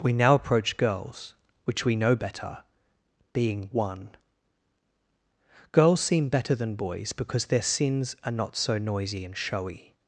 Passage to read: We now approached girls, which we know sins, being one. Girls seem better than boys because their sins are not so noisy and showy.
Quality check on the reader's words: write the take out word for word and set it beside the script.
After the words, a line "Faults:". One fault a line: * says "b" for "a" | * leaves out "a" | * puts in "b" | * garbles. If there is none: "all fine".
We now approach girls, which we know better, being one. Girls seem better than boys because their sins are not so noisy and showy.
Faults:
* says "approach" for "approached"
* says "better" for "sins"